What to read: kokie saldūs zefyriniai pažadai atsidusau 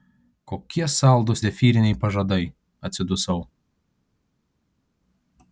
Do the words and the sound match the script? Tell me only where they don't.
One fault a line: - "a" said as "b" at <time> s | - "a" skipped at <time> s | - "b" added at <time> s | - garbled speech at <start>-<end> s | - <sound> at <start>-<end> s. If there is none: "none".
none